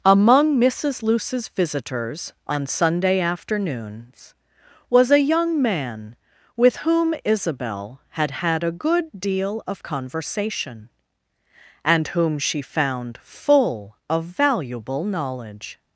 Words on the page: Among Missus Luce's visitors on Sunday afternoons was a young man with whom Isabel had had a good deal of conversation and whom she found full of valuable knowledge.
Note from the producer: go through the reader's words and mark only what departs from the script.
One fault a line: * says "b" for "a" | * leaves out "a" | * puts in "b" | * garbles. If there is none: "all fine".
all fine